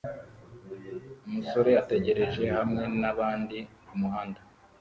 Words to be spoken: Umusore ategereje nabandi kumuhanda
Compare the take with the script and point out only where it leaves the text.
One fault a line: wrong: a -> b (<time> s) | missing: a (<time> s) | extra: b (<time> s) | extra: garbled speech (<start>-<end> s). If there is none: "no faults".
extra: hamwe (2.6 s)